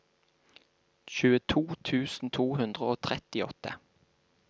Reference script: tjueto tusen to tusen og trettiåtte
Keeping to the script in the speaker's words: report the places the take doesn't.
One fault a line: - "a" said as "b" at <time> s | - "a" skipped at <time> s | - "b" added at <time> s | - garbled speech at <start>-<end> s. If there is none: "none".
- "tusen" said as "hundre" at 2.6 s